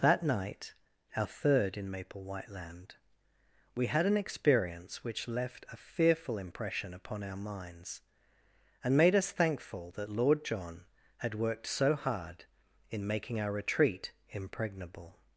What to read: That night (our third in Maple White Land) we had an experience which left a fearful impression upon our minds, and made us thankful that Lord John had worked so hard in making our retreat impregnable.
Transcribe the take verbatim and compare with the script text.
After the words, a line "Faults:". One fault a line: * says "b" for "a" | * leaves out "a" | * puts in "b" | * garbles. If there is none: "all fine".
That night (our third in Maple White Land) we had an experience which left a fearful impression upon our minds, and made us thankful that Lord John had worked so hard in making our retreat impregnable.
Faults:
all fine